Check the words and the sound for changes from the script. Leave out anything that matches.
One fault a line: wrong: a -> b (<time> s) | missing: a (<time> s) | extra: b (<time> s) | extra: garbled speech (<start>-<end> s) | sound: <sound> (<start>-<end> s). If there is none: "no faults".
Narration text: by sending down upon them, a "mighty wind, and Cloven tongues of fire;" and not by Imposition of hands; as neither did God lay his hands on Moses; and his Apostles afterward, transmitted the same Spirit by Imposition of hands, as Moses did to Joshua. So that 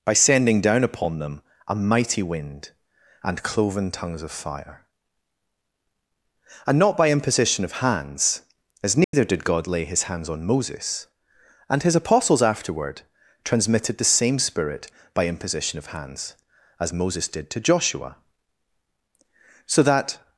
sound: dropout (9.0-9.1 s)